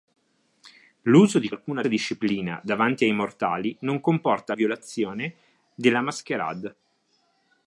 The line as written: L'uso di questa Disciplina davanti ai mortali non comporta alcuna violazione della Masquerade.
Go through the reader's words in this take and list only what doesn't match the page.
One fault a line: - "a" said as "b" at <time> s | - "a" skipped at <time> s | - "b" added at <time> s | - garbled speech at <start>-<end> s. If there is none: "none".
- "questa" said as "alcuna" at 1.5 s
- "alcuna" skipped at 4.5 s